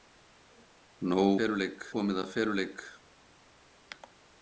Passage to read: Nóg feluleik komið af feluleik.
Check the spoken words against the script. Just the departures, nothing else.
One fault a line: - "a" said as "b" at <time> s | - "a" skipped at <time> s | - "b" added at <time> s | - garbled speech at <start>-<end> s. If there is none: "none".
none